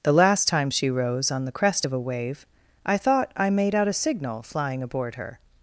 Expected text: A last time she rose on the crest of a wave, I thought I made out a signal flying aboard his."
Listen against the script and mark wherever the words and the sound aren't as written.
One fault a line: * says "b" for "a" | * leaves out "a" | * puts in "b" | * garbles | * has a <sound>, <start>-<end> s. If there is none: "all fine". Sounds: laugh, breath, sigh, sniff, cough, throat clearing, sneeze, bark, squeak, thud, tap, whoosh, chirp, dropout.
* says "The" for "A"
* says "her" for "his"